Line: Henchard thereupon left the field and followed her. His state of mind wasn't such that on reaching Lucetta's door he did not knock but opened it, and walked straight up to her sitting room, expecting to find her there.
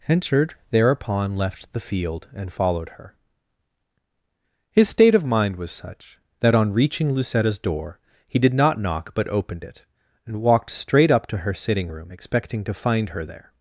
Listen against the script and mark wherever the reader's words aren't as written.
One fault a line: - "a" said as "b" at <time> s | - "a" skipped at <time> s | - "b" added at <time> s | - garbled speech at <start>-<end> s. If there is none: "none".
- "wasn't" said as "was" at 5.6 s